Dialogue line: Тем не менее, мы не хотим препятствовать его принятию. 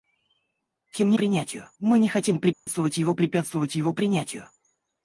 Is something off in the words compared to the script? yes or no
yes